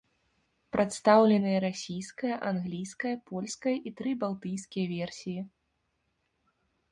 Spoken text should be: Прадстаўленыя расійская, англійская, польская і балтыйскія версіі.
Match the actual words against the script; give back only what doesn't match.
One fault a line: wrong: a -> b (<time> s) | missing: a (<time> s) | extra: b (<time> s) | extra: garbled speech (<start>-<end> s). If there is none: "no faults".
extra: тры (4.0 s)